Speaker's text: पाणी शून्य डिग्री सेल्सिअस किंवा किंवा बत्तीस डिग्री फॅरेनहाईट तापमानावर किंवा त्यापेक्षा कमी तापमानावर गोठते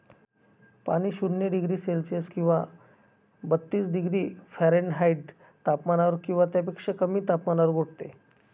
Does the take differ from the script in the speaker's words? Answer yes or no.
yes